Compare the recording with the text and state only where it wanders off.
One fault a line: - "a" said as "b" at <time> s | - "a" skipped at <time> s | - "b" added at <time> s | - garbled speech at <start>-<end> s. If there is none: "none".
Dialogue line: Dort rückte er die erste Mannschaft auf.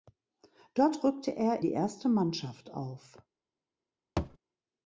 none